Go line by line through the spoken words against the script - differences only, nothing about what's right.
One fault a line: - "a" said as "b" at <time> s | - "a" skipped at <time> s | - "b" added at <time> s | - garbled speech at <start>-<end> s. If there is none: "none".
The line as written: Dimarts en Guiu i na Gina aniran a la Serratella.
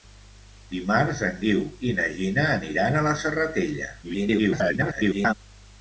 - garbled speech at 4.0-5.3 s